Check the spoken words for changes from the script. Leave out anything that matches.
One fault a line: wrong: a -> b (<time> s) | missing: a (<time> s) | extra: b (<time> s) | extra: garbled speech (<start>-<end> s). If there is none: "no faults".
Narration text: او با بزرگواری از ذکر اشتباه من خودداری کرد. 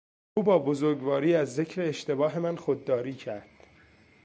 no faults